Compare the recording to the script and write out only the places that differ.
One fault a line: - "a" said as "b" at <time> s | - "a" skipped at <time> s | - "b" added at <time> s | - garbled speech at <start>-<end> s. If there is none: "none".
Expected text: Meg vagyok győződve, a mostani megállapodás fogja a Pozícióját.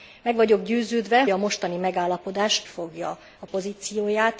none